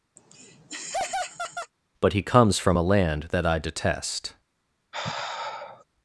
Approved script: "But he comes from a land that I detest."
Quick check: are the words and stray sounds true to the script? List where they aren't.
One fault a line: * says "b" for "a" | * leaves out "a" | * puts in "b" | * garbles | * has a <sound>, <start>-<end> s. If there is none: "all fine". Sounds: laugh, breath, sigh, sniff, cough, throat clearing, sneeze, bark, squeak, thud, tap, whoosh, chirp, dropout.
* has a laugh, 0.2-1.7 s
* has a sigh, 4.9-5.8 s